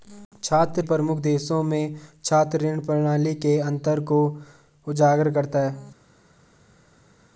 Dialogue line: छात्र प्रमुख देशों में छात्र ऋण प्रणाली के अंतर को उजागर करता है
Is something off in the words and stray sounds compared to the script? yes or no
no